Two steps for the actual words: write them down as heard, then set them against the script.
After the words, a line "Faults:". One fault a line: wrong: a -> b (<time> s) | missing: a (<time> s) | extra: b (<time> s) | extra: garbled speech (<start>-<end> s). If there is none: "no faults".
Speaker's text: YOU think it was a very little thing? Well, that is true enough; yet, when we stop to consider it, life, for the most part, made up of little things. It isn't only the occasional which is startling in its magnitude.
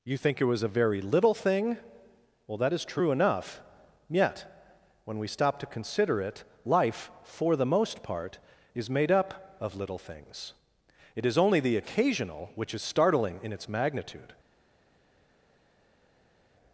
YOU think it was a very little thing? Well, that is true enough; yet, when we stop to consider it, life, for the most part, is made up of little things. It is only the occasional which is startling in its magnitude.
Faults:
extra: is (8.7 s)
wrong: isn't -> is (11.2 s)